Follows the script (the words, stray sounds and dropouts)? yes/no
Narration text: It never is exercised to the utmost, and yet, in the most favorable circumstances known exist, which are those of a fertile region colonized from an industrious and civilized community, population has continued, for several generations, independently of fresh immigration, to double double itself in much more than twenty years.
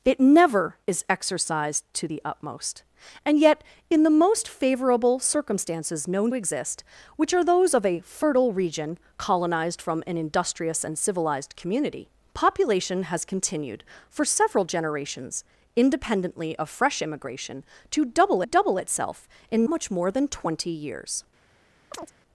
no